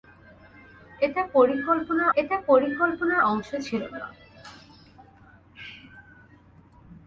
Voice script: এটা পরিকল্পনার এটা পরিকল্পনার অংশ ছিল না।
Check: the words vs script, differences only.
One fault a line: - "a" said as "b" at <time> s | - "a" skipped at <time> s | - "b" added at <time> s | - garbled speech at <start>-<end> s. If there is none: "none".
none